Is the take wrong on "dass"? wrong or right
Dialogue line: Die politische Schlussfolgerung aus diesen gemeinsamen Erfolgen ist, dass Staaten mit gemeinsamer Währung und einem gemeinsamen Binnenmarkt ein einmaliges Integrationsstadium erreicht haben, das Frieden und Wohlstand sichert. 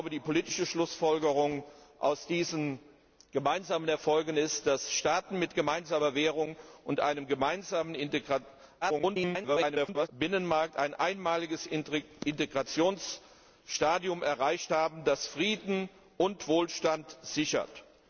right